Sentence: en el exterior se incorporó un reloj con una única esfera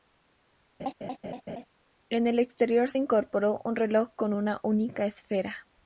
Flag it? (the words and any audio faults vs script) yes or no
yes